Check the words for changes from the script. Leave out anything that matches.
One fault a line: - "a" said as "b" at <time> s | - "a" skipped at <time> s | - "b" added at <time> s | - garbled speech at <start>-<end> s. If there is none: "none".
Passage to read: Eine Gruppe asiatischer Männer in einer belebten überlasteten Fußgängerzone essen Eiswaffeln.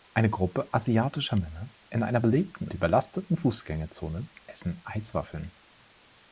none